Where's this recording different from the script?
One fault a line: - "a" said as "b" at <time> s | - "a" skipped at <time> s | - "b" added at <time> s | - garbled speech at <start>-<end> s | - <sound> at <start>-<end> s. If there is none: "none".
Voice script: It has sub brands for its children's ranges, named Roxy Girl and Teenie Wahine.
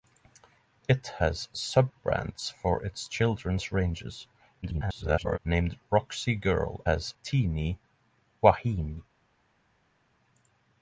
- garbled speech at 4.6-5.4 s
- "and" said as "has" at 6.8 s